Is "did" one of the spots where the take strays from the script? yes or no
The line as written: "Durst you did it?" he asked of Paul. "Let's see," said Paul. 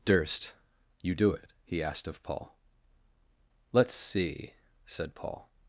yes